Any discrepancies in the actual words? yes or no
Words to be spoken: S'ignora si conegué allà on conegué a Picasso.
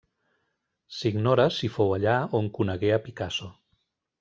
yes